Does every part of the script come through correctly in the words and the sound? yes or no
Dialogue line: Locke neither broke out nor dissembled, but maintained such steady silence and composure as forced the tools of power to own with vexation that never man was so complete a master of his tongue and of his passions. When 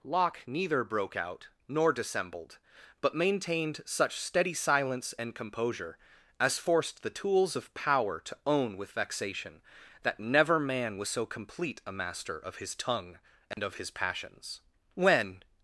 no